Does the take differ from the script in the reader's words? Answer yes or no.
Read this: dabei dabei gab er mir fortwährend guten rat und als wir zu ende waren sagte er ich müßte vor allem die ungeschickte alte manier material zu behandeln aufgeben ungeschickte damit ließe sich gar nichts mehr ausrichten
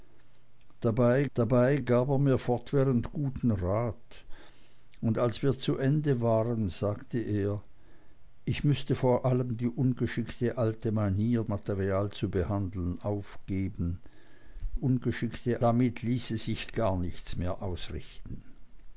no